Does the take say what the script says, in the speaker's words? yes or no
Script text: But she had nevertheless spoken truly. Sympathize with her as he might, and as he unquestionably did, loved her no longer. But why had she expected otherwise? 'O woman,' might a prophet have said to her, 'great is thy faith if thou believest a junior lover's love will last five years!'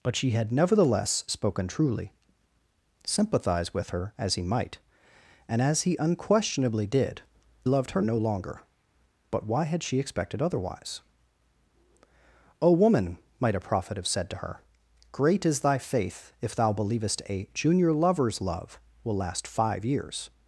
yes